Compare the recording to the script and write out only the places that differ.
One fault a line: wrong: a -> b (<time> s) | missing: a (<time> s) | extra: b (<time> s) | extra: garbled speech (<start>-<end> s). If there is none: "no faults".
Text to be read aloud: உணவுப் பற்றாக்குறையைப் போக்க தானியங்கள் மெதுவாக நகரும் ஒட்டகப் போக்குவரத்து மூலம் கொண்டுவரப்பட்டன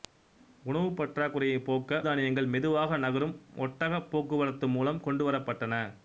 no faults